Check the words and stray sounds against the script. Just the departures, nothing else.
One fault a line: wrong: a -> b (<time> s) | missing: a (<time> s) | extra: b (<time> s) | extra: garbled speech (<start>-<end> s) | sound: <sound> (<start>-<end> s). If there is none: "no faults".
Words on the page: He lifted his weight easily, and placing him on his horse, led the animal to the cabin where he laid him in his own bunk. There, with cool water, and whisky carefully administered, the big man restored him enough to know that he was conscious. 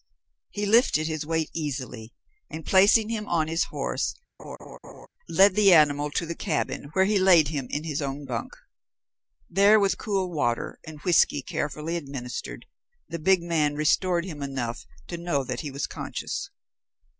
sound: laugh (4.4-5.1 s)